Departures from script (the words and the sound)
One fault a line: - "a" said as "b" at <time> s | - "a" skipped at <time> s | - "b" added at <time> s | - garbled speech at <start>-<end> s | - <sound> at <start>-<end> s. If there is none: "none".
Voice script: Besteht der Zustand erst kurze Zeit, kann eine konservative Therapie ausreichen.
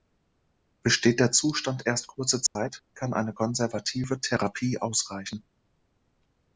- dropout at 2.5-2.6 s